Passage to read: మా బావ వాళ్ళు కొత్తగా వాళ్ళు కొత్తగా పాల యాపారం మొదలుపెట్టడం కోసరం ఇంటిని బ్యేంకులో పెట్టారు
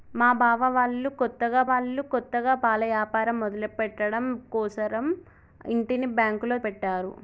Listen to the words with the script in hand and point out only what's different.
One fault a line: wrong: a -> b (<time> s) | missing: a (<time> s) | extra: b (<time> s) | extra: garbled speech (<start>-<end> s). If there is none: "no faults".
no faults